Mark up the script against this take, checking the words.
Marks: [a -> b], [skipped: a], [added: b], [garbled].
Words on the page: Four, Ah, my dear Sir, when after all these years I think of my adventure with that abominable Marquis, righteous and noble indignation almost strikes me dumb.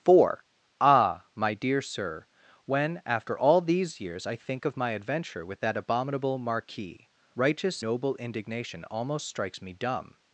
Four, Ah, my dear Sir, when after all these years I think of my adventure with that abominable Marquis, righteous [skipped: and] noble indignation almost strikes me dumb.